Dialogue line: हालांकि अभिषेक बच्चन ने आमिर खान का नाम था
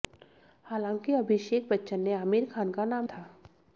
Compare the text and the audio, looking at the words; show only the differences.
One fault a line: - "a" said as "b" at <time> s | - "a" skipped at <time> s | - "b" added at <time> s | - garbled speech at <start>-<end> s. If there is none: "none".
none